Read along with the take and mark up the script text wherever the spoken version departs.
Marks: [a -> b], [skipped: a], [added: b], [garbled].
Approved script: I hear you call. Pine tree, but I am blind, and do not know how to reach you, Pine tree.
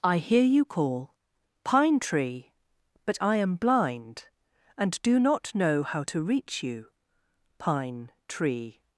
I hear you call. Pine tree, but I am blind, and do not know how to reach you, Pine tree.